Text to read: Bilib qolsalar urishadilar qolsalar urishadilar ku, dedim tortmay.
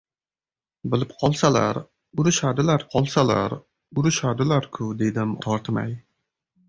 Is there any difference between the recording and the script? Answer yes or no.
no